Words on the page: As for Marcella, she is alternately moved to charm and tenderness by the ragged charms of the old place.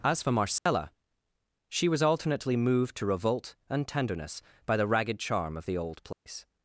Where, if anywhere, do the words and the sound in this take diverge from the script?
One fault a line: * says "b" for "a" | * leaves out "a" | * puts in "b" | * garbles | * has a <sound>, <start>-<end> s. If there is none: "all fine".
* has a dropout, 0.6-0.7 s
* says "was" for "is"
* says "revolt" for "charm"
* says "charm" for "charms"
* has a dropout, 6.1-6.3 s